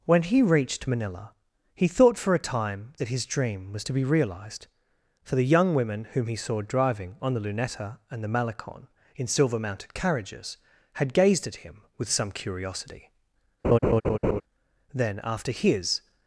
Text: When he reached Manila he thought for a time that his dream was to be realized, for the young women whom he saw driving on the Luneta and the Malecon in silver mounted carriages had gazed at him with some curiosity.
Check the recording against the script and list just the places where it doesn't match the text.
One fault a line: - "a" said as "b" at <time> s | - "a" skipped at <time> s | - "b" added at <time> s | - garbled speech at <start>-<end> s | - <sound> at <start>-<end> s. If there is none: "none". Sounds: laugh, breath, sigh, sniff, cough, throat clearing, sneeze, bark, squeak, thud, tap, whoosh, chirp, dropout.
- laugh at 13.6-14.4 s
- "Then after his" added at 14.9 s